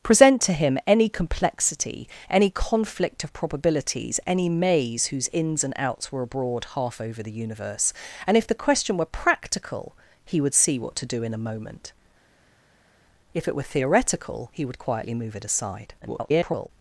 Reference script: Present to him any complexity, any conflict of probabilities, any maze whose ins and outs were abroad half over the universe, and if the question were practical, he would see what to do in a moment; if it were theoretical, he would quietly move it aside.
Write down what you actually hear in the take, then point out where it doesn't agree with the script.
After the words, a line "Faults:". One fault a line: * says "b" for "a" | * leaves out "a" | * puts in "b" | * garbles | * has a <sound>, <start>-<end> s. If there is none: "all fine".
Present to him any complexity, any conflict of probabilities, any maze whose ins and outs were abroad half over the universe, and if the question were practical, he would see what to do in a moment; if it were theoretical, he would quietly move it aside. [garbled]
Faults:
* garbles